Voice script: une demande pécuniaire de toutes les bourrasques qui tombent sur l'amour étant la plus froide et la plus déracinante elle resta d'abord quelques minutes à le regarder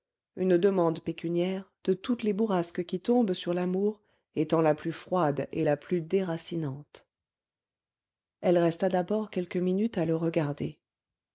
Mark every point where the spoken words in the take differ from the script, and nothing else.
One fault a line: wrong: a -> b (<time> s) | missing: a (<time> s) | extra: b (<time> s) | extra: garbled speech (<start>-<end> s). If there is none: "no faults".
no faults